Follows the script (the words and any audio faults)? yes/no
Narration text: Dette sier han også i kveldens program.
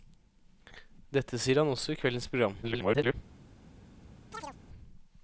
no